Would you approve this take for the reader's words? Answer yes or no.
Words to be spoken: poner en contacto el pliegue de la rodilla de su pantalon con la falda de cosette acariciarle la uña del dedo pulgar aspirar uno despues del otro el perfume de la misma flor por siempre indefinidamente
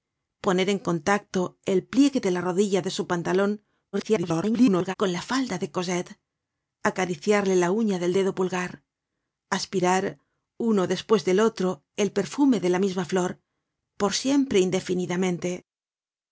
no